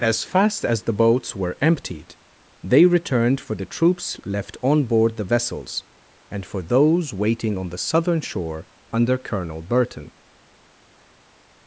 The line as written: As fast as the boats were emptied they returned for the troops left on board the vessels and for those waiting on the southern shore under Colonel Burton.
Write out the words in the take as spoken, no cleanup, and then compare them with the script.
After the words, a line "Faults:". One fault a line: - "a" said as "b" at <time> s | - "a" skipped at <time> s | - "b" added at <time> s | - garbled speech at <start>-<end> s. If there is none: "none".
As fast as the boats were emptied they returned for the troops left on board the vessels and for those waiting on the southern shore under Colonel Burton.
Faults:
none